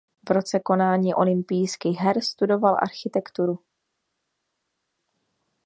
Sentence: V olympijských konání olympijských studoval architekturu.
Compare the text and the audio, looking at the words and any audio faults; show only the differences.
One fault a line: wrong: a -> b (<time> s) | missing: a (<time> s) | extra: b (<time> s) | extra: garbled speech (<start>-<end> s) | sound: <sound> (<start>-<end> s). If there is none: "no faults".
wrong: olympijských -> roce (0.3 s)
extra: her (2.0 s)